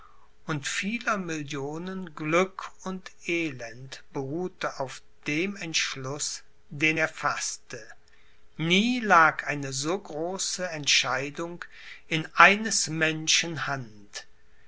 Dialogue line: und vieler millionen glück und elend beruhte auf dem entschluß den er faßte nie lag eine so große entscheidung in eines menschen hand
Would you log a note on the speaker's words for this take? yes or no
no